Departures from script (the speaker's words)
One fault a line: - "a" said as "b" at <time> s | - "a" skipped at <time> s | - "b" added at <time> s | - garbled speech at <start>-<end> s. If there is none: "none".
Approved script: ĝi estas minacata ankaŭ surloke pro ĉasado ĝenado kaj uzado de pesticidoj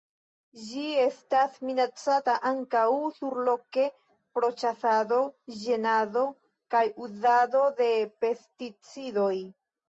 none